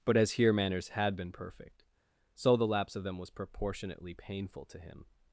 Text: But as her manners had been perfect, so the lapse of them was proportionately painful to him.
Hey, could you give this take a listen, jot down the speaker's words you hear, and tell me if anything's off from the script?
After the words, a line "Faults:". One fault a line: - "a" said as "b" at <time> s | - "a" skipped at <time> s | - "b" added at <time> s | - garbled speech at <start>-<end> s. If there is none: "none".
But as here manners had been perfect, so the lapse of them was proportionately painful to him.
Faults:
- "her" said as "here" at 0.3 s